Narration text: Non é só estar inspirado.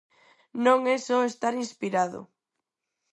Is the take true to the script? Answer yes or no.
yes